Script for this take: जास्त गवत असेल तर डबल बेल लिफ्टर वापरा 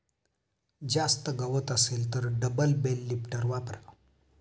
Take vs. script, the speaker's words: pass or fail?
pass